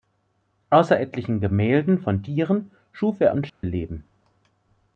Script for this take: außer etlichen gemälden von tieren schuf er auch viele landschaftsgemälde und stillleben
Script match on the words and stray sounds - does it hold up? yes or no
no